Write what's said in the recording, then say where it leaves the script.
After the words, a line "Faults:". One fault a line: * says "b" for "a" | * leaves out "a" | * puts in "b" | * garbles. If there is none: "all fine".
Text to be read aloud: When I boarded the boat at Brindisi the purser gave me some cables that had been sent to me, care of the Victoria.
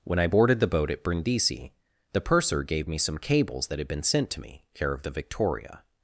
When I boarded the boat at Brindisi the purser gave me some cables that had been sent to me, care of the Victoria.
Faults:
all fine